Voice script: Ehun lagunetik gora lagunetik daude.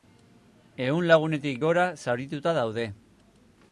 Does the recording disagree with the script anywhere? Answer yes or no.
yes